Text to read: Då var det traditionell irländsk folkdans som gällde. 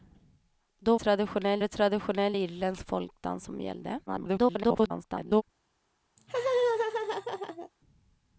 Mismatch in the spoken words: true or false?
true